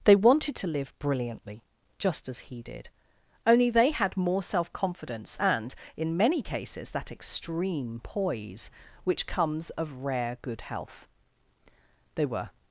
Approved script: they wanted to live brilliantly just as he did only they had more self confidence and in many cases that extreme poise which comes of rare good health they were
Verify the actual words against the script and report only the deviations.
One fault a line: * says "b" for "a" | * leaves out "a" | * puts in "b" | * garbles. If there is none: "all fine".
all fine